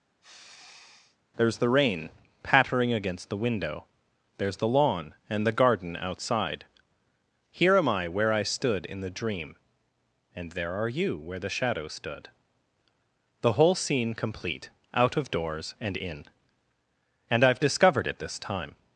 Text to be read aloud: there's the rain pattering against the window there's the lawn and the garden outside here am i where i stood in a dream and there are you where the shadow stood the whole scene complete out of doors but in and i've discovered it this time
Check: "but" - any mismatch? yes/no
yes